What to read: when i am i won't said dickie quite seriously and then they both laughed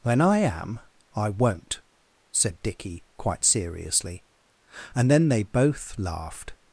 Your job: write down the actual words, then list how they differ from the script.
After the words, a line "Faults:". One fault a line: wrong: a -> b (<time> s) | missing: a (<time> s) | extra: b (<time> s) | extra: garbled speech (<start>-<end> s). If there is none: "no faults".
when i am i won't said dickie quite seriously and then they both laughed
Faults:
no faults